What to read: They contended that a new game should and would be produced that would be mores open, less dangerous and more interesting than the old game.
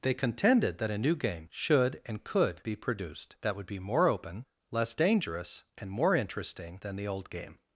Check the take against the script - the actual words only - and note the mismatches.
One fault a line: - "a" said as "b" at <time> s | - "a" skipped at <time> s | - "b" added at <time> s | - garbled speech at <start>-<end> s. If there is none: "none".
- "would" said as "could" at 2.2 s
- "mores" said as "more" at 3.8 s